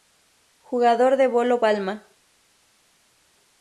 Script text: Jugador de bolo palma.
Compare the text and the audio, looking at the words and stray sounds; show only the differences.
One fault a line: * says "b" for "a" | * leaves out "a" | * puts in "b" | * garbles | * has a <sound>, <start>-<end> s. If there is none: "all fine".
all fine